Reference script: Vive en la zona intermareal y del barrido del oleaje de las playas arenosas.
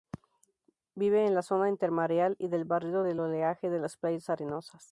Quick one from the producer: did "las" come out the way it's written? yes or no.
yes